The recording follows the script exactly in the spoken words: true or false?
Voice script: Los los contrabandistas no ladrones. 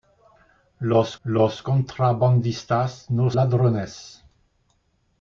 true